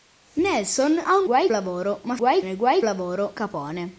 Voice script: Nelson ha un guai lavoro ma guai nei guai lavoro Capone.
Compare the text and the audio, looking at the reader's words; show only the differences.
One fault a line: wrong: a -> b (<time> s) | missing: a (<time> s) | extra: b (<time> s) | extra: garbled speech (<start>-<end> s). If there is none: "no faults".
no faults